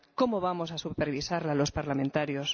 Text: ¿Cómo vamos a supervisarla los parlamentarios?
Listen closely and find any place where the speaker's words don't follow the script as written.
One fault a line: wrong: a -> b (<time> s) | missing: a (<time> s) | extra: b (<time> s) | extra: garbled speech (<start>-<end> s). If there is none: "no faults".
no faults